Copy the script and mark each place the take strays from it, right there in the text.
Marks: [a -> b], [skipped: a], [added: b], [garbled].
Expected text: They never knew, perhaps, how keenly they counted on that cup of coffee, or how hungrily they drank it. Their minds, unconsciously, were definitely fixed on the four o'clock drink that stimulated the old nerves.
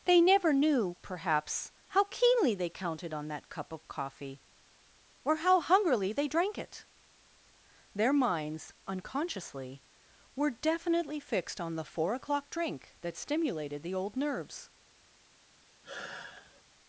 They never knew, perhaps, how keenly they counted on that cup of coffee, or how hungrily they drank it. Their minds, unconsciously, were definitely fixed on the four o'clock drink that stimulated the old nerves.